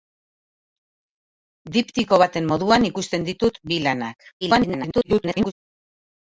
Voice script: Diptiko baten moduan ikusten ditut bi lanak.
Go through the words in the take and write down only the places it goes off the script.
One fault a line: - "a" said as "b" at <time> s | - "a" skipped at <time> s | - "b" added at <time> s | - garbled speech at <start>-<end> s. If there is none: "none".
- garbled speech at 4.4-5.5 s